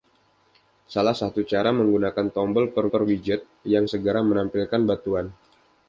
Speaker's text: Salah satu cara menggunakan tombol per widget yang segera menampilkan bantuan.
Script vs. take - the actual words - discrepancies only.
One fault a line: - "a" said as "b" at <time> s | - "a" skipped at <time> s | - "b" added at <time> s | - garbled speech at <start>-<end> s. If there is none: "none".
- "per" added at 2.9 s